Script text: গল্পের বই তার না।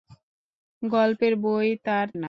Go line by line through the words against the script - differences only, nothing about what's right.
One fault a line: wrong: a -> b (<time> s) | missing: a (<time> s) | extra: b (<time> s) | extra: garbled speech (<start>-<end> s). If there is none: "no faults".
no faults